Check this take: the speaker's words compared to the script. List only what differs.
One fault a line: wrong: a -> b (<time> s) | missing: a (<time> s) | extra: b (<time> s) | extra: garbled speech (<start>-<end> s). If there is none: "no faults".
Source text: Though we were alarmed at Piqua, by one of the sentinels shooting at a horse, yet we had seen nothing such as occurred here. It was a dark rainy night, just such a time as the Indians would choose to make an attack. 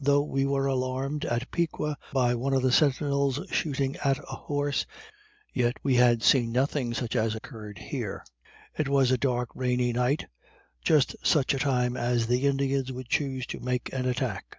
no faults